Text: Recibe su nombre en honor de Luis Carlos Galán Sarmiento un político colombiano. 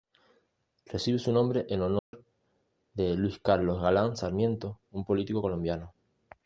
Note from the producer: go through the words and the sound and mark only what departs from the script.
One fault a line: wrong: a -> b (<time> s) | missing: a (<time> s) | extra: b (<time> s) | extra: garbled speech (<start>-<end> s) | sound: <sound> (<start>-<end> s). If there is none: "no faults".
sound: dropout (2.0-2.1 s)